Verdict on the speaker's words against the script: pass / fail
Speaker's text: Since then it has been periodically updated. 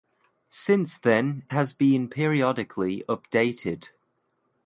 fail